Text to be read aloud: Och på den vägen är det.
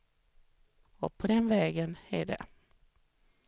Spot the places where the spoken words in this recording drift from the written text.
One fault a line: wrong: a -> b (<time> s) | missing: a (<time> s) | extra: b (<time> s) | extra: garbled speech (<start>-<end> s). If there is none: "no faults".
no faults